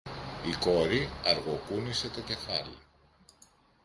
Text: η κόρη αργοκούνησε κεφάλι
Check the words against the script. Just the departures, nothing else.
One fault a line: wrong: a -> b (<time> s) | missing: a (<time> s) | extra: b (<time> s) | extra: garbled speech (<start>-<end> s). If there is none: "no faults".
extra: το (2.1 s)